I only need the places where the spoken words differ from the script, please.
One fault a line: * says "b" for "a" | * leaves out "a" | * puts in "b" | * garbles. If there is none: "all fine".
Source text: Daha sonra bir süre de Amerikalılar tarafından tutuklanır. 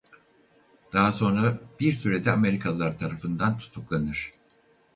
all fine